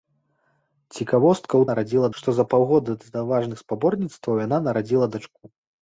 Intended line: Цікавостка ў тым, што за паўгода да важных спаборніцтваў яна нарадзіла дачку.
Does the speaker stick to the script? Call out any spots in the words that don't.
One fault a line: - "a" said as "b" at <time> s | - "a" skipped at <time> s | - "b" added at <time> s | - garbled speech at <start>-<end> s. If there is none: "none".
- "тым" said as "нарадзіла" at 1.7 s